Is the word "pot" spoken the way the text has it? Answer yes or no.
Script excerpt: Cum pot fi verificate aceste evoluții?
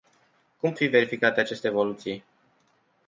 no